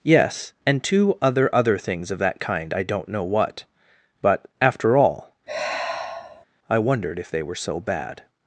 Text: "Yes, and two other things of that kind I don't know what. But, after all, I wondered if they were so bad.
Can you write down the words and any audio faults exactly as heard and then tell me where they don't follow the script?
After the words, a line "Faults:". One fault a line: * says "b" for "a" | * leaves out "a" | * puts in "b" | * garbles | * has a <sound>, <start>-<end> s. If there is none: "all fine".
"Yes, and two other other things of that kind I don't know what. But, after all, I wondered if they were so bad.
Faults:
* puts in "other"
* has a sigh, 5.5-6.5 s